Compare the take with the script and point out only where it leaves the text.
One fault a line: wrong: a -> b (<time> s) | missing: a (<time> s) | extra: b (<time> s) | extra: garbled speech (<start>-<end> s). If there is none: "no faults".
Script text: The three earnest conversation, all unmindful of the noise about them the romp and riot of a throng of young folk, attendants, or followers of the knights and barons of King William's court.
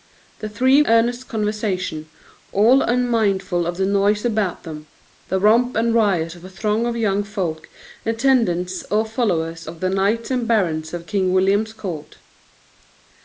no faults